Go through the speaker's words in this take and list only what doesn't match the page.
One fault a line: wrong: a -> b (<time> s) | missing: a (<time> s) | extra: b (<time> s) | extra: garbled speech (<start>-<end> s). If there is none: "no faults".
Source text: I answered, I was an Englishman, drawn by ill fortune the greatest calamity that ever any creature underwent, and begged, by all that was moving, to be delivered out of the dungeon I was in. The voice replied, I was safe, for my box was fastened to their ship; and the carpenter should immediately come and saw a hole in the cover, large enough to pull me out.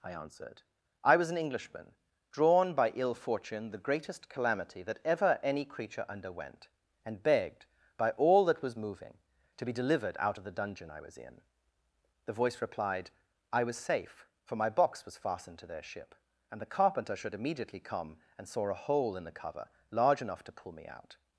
no faults